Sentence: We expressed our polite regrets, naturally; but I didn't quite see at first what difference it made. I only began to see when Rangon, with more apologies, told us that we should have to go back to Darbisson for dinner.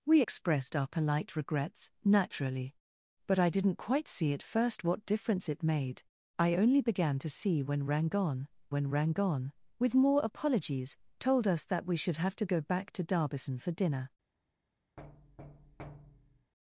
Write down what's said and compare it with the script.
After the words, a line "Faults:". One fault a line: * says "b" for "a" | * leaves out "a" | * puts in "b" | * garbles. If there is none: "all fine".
We expressed our polite regrets, naturally; but I didn't quite see at first what difference it made. I only began to see when Rangon when Rangon, with more apologies, told us that we should have to go back to Darbisson for dinner.
Faults:
* puts in "when Rangon"